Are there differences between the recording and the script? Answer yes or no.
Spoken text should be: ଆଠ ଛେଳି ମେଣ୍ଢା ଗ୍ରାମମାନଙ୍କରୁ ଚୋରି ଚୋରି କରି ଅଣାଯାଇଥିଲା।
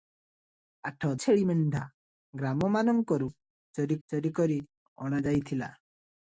no